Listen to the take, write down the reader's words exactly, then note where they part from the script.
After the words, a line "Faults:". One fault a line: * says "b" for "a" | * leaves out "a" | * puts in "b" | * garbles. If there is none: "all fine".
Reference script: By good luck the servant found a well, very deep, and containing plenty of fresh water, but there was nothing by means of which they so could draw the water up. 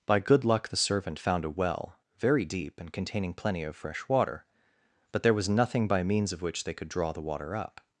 By good luck the servant found a well, very deep, and containing plenty of fresh water, but there was nothing by means of which they could draw the water up.
Faults:
* leaves out "so"